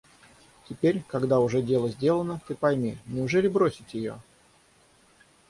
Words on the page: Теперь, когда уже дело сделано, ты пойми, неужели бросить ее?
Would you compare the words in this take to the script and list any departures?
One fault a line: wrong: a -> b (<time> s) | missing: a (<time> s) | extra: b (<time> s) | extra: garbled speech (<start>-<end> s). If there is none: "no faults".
no faults